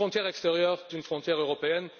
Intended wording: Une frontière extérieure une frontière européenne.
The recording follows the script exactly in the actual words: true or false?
true